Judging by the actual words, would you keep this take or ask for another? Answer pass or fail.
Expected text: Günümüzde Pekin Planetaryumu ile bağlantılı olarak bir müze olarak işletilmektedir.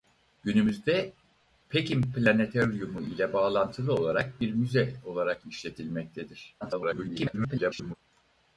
fail